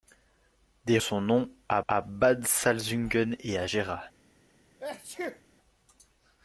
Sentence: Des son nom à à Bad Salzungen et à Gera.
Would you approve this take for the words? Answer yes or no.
yes